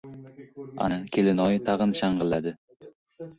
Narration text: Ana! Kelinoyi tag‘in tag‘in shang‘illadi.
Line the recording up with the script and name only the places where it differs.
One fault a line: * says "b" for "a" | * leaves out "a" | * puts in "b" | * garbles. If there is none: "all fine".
* leaves out "tag‘in"